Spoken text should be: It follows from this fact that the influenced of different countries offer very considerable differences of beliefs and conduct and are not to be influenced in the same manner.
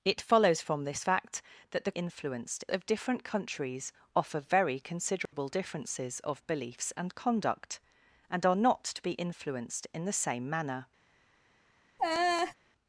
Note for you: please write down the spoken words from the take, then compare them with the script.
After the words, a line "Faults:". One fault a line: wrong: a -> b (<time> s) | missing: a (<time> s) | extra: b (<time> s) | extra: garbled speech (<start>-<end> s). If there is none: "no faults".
It follows from this fact that the influenced of different countries offer very considerable differences of beliefs and conduct and are not to be influenced in the same manner.
Faults:
no faults